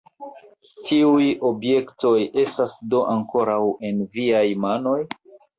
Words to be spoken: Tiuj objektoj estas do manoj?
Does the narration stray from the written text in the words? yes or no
yes